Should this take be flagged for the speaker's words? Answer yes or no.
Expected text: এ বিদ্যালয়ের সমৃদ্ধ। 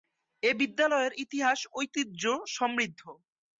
yes